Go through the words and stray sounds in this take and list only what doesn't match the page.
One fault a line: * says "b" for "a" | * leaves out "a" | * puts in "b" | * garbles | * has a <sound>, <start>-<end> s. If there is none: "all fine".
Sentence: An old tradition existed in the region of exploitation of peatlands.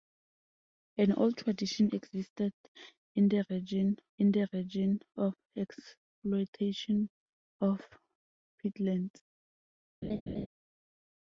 * puts in "in the region"
* has a laugh, 10.0-10.5 s